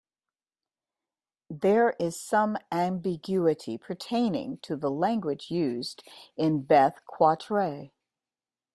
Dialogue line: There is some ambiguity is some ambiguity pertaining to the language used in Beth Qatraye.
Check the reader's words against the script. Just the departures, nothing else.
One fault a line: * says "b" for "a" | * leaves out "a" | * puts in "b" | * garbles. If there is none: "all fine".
* leaves out "is some ambiguity"